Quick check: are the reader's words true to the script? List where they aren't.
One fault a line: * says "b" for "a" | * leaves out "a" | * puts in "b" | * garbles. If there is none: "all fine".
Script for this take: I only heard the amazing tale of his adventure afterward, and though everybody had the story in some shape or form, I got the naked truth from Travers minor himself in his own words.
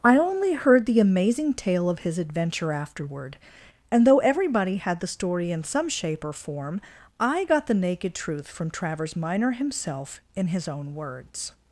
all fine